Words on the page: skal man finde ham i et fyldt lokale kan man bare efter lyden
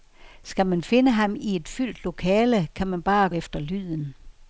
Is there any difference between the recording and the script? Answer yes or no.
no